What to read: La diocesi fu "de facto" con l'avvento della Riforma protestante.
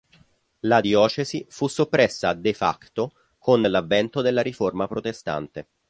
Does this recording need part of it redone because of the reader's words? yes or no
yes